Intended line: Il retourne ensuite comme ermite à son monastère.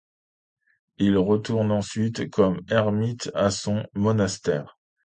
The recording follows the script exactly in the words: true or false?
true